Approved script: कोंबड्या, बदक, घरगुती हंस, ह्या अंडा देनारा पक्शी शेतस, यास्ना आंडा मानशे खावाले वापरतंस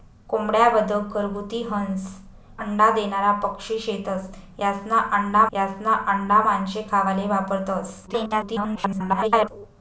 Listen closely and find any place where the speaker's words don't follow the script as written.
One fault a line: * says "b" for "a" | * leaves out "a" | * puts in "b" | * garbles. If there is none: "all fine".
* leaves out "ह्या"
* puts in "यास्ना आंडा"
* garbles